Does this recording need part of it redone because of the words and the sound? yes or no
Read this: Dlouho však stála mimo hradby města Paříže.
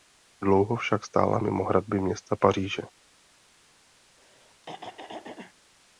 yes